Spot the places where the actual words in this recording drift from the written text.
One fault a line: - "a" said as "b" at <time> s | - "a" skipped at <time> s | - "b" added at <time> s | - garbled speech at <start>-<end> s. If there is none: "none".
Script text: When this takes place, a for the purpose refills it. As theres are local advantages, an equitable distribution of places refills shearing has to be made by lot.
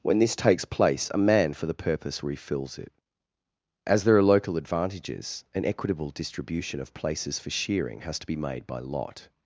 - "man" added at 1.2 s
- "theres" said as "there" at 4.0 s
- "refills" said as "for" at 7.4 s